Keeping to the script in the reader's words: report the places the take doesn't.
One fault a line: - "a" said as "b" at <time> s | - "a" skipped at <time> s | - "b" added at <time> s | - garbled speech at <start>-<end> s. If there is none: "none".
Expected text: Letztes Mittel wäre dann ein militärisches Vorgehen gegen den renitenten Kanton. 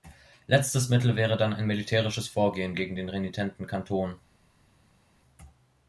none